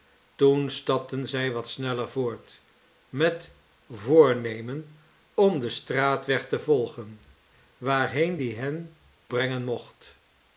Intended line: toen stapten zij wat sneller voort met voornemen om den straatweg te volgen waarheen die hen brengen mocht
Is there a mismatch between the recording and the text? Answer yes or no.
no